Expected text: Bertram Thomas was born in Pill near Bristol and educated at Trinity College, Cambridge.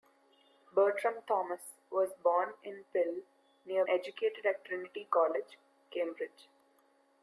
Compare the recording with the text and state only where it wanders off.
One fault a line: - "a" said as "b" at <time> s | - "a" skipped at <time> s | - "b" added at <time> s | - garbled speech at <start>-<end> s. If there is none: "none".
- "Bristol and" skipped at 3.9 s